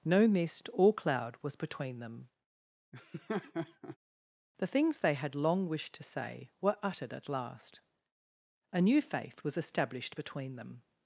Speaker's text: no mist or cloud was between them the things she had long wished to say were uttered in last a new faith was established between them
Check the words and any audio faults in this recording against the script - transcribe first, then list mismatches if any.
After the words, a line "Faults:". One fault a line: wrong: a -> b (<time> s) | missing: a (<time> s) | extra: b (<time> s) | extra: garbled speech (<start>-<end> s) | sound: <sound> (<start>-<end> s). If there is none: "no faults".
no mist or cloud was between them the things they had long wished to say were uttered at last a new faith was established between them
Faults:
sound: laugh (2.9-4.0 s)
wrong: she -> they (5.0 s)
wrong: in -> at (7.1 s)